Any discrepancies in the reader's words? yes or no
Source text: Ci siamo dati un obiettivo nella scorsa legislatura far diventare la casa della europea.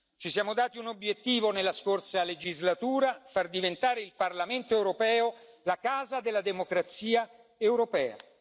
yes